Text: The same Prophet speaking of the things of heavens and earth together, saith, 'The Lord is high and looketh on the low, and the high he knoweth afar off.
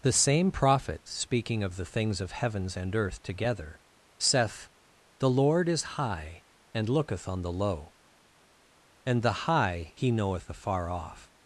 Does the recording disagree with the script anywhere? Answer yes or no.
no